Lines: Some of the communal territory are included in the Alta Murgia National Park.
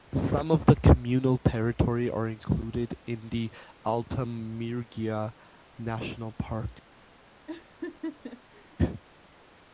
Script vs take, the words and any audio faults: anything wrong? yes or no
yes